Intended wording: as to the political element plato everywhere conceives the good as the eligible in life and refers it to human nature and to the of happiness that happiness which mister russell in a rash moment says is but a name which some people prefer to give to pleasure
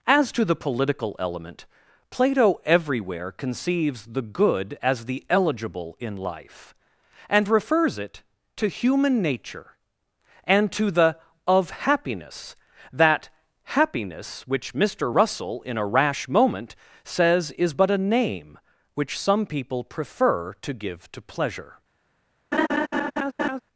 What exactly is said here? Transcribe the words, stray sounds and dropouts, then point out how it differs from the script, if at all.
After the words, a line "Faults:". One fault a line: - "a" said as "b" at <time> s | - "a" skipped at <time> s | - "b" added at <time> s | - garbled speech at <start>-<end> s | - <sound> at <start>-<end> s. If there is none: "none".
as to the political element plato everywhere conceives the good as the eligible in life and refers it to human nature and to the of happiness that happiness which mister russell in a rash moment says is but a name which some people prefer to give to pleasure
Faults:
- laugh at 22.5-23.6 s